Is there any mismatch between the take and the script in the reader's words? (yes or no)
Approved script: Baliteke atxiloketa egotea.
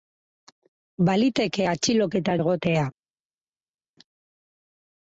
no